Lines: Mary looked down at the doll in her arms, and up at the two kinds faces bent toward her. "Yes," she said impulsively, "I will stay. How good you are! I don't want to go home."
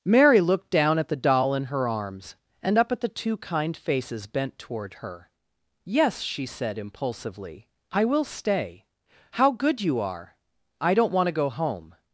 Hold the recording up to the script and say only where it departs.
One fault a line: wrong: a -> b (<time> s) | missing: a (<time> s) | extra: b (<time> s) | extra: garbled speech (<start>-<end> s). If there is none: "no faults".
wrong: kinds -> kind (3.4 s)